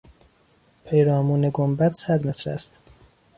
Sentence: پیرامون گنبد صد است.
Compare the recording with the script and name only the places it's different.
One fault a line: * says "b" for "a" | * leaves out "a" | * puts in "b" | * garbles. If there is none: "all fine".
* puts in "متر"